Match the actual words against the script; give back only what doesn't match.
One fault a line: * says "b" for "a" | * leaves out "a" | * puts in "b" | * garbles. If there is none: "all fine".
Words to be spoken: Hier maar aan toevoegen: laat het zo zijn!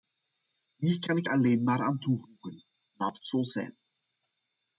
* puts in "kan ik alleen"